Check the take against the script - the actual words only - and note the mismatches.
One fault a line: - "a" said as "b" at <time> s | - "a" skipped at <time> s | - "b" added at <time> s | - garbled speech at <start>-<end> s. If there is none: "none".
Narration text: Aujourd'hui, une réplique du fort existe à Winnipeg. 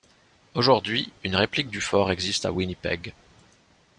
none